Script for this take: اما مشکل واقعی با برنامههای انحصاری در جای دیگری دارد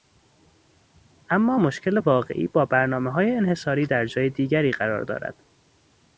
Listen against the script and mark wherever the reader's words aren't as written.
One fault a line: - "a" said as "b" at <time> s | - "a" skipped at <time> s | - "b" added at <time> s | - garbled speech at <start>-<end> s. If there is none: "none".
- "قرار" added at 4.7 s